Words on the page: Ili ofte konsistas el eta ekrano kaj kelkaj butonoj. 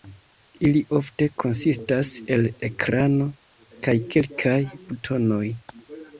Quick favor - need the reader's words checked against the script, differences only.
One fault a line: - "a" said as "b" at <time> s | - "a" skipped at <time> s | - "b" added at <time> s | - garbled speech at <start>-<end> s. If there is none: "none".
- "eta" skipped at 2.5 s